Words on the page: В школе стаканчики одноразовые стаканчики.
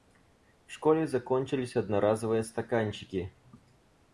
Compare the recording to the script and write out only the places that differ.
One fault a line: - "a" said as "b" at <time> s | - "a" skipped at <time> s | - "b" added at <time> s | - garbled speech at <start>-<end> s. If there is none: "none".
- "стаканчики" said as "закончились" at 1.1 s